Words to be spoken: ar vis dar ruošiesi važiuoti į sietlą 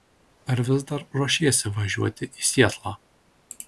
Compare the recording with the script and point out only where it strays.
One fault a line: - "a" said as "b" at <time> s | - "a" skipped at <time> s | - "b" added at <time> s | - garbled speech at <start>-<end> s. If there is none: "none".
none